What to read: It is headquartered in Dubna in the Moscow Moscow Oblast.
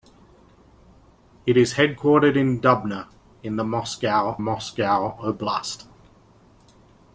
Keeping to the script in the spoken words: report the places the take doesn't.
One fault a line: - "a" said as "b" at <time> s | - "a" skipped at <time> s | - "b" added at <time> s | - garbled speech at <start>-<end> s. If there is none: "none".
none